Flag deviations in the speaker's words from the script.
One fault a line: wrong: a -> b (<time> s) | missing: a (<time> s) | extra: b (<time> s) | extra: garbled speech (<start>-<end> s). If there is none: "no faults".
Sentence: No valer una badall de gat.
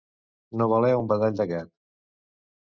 wrong: una -> un (1.0 s)